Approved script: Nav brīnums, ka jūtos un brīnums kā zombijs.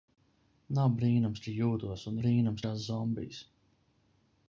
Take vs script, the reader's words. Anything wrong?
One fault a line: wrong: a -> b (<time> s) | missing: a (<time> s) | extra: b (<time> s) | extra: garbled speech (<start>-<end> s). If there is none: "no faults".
no faults